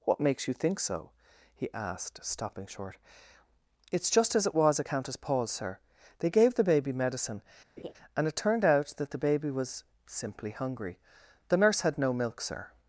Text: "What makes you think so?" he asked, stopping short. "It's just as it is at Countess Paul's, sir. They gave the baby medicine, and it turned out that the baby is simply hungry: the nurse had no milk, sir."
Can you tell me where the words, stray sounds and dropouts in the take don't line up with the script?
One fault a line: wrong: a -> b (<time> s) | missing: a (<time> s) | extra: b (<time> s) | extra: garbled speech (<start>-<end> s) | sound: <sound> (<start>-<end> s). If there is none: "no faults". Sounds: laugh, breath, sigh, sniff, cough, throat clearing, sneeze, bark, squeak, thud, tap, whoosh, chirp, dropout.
wrong: is -> was (4.5 s)
sound: laugh (7.8-7.9 s)
wrong: is -> was (9.5 s)